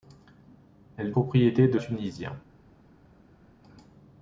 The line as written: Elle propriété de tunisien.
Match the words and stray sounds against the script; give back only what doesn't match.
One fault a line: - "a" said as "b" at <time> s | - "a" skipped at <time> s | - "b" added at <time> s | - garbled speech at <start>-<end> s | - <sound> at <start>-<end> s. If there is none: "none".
none